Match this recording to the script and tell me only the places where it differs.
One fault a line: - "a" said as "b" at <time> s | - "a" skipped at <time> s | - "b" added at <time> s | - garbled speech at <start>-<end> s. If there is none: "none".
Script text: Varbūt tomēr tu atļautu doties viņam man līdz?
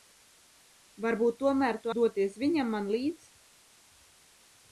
- "atļautu" skipped at 1.9 s